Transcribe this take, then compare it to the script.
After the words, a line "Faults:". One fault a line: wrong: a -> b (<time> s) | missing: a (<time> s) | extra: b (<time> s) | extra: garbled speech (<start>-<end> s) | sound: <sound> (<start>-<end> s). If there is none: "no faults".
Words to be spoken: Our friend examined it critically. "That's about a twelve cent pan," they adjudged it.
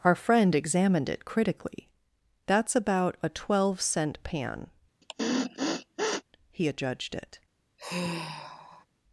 Our friend examined it critically. "That's about a twelve cent pan," he adjudged it.
Faults:
sound: sniff (5.0-6.2 s)
wrong: they -> he (6.5 s)
sound: sigh (7.8-8.9 s)